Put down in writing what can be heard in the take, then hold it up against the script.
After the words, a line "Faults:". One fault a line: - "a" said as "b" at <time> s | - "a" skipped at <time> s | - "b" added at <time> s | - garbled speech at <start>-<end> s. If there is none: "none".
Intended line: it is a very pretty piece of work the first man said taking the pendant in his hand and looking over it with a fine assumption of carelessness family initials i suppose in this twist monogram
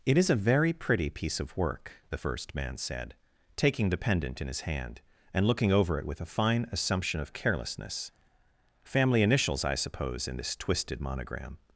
it is a very pretty piece of work the first man said taking the pendant in his hand and looking over it with a fine assumption of carelessness family initials i suppose in this twisted monogram
Faults:
- "twist" said as "twisted" at 10.5 s